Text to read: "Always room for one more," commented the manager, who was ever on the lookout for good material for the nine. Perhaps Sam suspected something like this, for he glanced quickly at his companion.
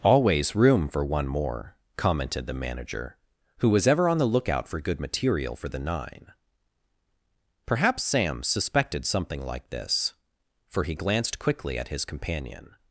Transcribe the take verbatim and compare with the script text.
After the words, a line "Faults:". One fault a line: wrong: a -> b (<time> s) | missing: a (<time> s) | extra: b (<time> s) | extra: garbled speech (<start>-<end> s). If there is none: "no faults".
"Always room for one more," commented the manager, who was ever on the lookout for good material for the nine. Perhaps Sam suspected something like this, for he glanced quickly at his companion.
Faults:
no faults